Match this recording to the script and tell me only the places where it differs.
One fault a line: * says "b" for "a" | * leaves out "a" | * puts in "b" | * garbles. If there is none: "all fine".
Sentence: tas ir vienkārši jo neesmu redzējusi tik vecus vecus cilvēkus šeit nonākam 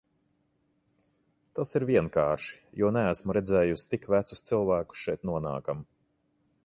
* leaves out "vecus"